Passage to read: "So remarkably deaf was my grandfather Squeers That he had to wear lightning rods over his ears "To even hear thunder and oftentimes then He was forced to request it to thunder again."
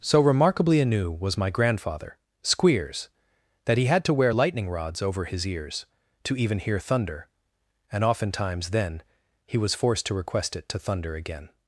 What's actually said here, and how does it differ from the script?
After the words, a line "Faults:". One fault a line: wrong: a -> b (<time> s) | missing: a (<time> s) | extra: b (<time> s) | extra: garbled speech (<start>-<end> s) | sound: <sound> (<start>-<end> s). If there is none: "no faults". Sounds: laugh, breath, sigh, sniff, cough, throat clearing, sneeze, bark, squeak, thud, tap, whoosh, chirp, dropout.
"So remarkably anew was my grandfather Squeers That he had to wear lightning rods over his ears "To even hear thunder and oftentimes then He was forced to request it to thunder again."
Faults:
wrong: deaf -> anew (0.8 s)